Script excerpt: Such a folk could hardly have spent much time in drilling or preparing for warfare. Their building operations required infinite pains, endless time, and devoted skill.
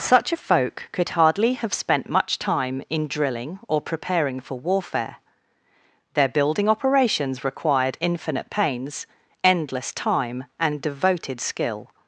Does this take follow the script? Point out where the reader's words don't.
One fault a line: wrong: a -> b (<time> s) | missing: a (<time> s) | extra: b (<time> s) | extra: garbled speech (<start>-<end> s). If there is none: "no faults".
no faults